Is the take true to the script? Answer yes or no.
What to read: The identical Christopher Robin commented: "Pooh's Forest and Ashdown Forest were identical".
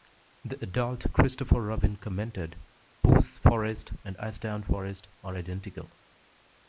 no